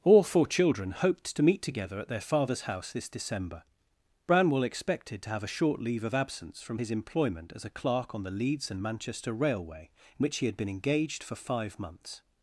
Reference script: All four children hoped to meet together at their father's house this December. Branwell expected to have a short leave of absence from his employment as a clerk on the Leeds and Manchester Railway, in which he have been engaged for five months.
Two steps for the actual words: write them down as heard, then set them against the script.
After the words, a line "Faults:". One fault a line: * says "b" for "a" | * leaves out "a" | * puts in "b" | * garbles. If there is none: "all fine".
All four children hoped to meet together at their father's house this December. Branwell expected to have a short leave of absence from his employment as a clerk on the Leeds and Manchester Railway, in which he had been engaged for five months.
Faults:
* says "had" for "have"